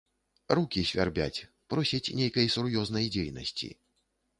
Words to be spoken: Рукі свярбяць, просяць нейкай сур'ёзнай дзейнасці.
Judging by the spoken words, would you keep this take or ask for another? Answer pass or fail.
pass